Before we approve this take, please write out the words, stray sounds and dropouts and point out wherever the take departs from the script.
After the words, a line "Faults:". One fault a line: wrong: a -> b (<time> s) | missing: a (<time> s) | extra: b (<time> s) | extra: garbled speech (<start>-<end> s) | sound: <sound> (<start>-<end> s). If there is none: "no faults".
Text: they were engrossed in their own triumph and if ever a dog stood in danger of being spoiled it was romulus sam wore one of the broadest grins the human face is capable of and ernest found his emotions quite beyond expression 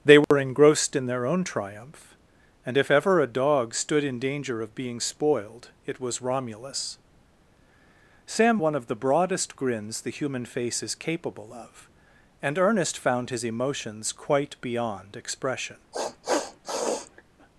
they were engrossed in their own triumph and if ever a dog stood in danger of being spoiled it was romulus sam one of the broadest grins the human face is capable of and ernest found his emotions quite beyond expression
Faults:
sound: dropout (0.2-0.3 s)
missing: wore (8.6 s)
sound: sniff (15.9-17.2 s)